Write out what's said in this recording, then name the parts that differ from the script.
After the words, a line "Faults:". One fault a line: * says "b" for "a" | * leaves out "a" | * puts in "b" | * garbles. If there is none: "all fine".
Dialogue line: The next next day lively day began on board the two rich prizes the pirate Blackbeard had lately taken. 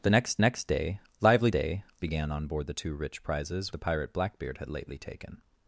The next next day lively day began on board the two rich prizes the pirate Blackbeard had lately taken.
Faults:
all fine